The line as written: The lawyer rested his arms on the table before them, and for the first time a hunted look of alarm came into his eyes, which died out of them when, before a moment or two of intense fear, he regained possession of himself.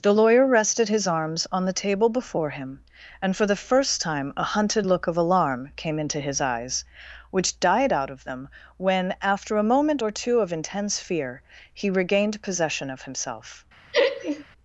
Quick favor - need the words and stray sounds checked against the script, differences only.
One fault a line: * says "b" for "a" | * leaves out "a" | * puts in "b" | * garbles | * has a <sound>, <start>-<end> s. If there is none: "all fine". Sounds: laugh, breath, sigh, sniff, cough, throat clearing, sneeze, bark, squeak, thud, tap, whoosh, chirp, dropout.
* says "him" for "them"
* says "after" for "before"
* has a laugh, 13.9-14.4 s